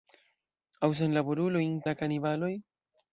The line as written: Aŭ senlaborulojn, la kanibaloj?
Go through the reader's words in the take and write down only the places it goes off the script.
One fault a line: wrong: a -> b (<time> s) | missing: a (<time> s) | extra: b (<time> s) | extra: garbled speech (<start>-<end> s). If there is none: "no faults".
no faults